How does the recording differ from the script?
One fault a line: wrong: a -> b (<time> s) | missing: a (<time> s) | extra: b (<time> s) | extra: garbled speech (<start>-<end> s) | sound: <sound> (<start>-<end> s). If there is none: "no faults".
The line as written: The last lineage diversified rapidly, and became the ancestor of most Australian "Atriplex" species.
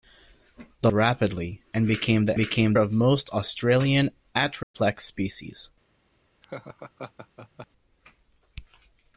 missing: last lineage diversified (0.9 s)
wrong: ancestor -> became (2.4 s)
sound: dropout (4.6-4.7 s)
sound: laugh (6.4-7.7 s)